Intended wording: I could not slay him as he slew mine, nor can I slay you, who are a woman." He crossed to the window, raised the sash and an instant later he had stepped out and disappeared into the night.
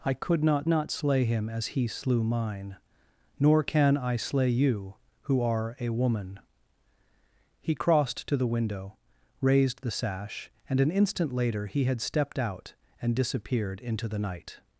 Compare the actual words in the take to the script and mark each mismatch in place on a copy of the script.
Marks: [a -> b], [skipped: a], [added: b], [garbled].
I could not [added: not] slay him as he slew mine, nor can I slay you, who are a woman." He crossed to the window, raised the sash and an instant later he had stepped out and disappeared into the night.